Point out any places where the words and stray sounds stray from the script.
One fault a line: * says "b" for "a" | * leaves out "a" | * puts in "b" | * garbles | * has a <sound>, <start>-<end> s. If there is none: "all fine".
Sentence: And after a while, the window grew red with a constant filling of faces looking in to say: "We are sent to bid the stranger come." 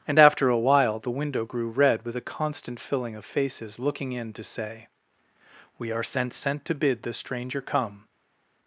* puts in "sent"